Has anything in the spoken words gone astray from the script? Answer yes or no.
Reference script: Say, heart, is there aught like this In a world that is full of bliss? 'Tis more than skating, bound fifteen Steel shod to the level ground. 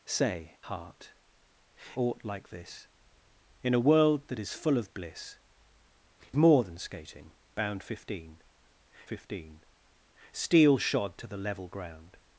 yes